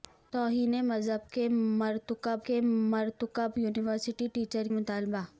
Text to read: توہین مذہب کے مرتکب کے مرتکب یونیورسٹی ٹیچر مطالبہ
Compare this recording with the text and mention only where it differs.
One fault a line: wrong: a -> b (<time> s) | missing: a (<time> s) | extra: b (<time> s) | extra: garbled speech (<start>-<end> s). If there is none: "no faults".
no faults